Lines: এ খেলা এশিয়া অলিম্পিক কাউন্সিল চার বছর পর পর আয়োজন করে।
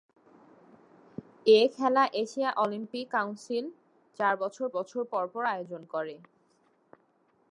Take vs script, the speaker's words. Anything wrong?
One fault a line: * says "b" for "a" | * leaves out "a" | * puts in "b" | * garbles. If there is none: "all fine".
* puts in "বছর"